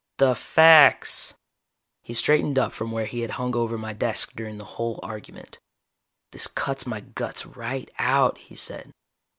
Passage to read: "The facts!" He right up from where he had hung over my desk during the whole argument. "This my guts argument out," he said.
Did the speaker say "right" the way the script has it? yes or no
no